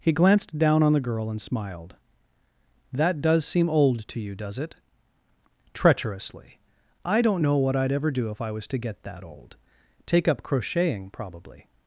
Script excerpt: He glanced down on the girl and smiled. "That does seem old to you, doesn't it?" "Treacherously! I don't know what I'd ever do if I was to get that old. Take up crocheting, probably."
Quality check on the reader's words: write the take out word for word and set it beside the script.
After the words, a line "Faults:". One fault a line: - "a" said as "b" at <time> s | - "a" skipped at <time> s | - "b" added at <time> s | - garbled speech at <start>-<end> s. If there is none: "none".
He glanced down on the girl and smiled. "That does seem old to you, does it?" "Treacherously! I don't know what I'd ever do if I was to get that old. Take up crocheting, probably."
Faults:
- "doesn't" said as "does" at 4.3 s